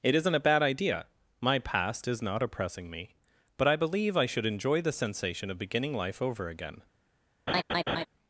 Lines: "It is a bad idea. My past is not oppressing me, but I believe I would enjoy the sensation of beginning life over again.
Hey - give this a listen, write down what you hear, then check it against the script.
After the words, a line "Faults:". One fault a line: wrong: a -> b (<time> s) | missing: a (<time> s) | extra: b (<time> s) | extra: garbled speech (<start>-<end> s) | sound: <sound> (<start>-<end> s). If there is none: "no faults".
"It isn't a bad idea. My past is not oppressing me, but I believe I should enjoy the sensation of beginning life over again.
Faults:
wrong: is -> isn't (0.1 s)
wrong: would -> should (4.2 s)
sound: laugh (7.5-8.1 s)